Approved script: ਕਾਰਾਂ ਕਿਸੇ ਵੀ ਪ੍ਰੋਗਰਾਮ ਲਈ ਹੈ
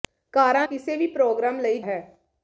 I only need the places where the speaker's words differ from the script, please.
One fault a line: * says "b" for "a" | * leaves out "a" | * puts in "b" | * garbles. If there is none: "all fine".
all fine